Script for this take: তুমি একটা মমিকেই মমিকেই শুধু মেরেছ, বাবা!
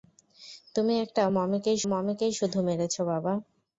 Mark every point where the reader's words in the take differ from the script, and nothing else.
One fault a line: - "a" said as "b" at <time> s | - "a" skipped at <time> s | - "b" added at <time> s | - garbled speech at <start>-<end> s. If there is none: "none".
none